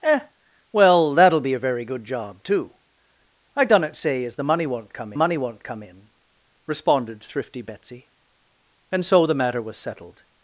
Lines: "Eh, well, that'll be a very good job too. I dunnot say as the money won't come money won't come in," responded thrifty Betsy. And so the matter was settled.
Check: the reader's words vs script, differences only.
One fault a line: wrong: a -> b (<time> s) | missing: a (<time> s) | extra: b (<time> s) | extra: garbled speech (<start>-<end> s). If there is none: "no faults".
no faults